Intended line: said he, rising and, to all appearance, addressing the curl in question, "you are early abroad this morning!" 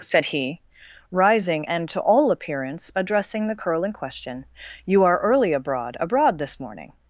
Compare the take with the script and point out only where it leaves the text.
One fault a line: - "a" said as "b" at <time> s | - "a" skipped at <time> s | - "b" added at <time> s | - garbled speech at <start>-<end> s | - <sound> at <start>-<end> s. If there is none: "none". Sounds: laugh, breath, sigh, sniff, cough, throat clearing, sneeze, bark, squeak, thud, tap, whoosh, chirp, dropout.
- "abroad" added at 6.0 s